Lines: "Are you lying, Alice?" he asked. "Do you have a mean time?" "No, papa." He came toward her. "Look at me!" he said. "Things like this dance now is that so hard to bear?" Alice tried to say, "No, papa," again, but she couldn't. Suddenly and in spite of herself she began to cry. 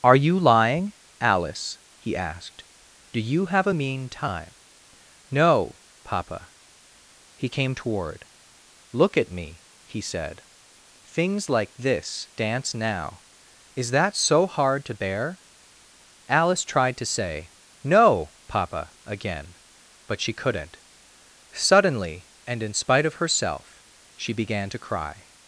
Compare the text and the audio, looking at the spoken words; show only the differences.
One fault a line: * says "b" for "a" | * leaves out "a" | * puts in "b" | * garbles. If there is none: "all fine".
* leaves out "her"